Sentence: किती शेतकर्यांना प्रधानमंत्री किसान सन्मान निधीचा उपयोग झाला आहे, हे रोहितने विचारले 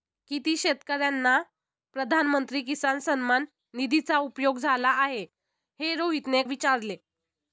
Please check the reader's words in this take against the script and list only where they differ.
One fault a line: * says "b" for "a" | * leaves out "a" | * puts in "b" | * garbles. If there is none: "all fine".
all fine